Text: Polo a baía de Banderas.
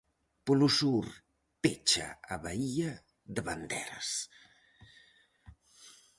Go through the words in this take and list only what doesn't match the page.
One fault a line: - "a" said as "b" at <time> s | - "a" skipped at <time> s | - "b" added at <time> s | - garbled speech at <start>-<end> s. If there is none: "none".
- "sur pecha" added at 0.8 s